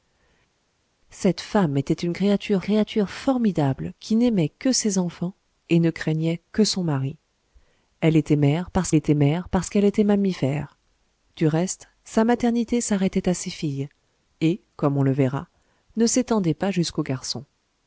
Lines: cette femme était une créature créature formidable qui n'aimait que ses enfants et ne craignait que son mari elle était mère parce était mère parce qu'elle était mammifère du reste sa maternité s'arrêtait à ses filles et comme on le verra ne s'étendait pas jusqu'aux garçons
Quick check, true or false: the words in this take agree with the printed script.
true